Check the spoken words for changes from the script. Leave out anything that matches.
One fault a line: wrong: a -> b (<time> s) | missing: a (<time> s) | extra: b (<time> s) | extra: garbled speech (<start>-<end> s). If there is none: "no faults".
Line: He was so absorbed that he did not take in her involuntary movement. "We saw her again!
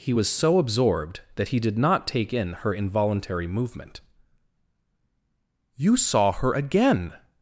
wrong: We -> You (5.8 s)